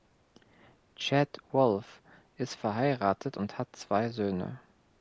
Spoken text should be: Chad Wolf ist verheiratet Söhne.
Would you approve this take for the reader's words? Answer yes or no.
no